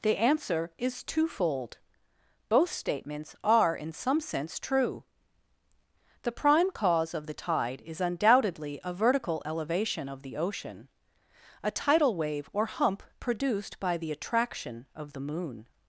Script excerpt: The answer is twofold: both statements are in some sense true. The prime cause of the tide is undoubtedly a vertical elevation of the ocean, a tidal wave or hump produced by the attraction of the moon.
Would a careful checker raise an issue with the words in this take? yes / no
no